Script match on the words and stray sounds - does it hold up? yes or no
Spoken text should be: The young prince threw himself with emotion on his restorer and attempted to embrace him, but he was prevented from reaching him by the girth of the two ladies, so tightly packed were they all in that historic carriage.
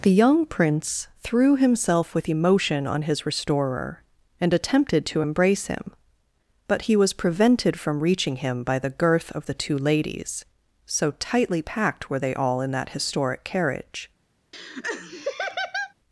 no